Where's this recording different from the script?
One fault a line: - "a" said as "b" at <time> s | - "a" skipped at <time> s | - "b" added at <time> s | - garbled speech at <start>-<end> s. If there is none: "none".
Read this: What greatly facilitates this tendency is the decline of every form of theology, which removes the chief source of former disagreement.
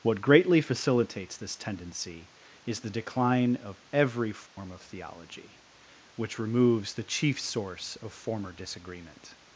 none